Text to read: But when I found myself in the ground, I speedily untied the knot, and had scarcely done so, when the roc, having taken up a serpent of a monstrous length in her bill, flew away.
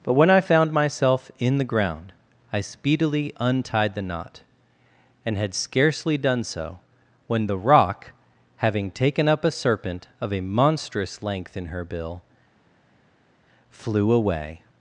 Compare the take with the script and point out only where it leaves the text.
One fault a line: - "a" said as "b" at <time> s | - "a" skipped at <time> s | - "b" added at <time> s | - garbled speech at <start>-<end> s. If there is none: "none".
none